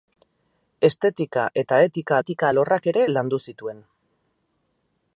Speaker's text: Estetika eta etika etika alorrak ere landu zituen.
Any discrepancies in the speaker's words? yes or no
no